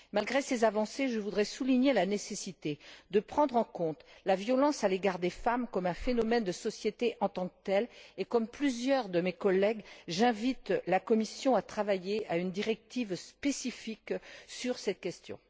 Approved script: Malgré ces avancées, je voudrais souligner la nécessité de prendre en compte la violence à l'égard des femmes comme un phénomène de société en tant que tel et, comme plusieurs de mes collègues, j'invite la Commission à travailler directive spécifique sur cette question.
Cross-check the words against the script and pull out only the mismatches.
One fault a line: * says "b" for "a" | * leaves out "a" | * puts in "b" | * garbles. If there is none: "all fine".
* puts in "à une"